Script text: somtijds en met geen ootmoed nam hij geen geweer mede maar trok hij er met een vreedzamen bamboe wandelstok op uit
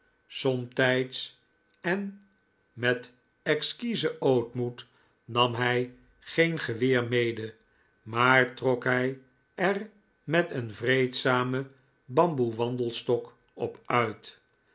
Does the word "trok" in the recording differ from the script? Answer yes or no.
no